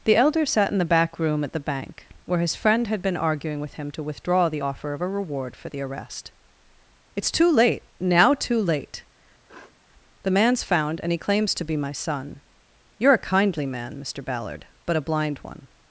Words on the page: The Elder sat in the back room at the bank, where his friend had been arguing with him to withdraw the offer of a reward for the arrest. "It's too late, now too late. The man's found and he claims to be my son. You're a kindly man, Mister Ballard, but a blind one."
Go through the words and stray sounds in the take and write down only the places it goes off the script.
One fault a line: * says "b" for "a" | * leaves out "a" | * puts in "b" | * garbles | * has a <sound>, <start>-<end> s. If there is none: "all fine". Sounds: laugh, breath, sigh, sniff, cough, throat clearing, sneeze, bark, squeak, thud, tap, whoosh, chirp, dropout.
* has a sniff, 9.5-9.7 s